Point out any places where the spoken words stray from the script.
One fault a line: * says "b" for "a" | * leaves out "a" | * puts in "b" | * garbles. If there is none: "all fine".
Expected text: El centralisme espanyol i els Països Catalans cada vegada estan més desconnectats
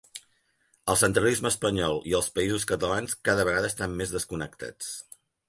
all fine